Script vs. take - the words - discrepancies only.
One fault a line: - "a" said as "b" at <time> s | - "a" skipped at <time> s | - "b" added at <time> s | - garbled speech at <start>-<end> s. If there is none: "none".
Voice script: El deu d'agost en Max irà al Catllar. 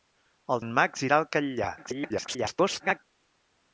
- "deu d'agost" skipped at 0.6 s
- garbled speech at 1.8-3.0 s